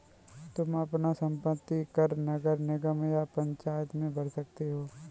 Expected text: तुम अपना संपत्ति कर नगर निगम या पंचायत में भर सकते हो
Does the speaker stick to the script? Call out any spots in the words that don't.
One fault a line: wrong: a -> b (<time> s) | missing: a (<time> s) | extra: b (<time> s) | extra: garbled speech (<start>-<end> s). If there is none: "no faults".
no faults